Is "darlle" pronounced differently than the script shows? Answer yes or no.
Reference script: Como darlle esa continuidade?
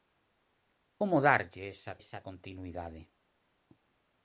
no